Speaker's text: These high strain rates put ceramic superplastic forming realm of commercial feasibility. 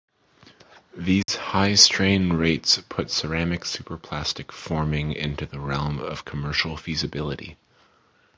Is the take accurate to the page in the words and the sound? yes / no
no